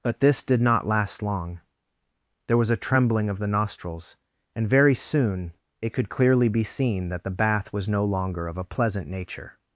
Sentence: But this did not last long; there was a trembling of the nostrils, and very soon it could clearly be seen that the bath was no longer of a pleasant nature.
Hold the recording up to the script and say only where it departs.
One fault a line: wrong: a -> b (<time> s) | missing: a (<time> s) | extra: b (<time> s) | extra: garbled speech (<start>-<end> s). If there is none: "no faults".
no faults